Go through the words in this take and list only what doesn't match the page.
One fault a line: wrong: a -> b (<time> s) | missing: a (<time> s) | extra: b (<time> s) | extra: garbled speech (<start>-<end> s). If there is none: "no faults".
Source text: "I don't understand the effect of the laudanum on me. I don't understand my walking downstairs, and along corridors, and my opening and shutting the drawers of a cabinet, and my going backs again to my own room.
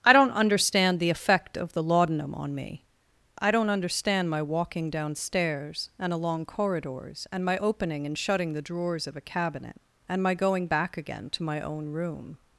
wrong: backs -> back (10.7 s)